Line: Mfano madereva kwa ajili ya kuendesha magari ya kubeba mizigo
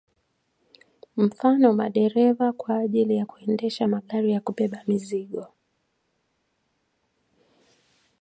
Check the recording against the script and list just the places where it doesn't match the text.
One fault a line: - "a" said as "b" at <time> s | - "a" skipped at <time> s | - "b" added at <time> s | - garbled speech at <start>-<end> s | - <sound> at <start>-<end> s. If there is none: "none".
none